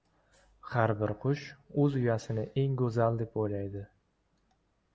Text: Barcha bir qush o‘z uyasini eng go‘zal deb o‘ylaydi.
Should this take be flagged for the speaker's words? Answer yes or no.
yes